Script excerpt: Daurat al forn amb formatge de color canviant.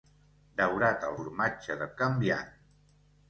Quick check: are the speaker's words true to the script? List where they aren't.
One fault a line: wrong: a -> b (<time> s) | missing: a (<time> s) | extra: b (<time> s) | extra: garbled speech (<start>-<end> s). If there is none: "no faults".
missing: forn amb (1.2 s)
missing: color (1.9 s)